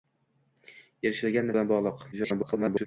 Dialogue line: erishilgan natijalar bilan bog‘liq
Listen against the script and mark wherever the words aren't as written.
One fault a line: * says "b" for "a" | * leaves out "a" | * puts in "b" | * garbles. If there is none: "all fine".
* leaves out "natijalar"
* garbles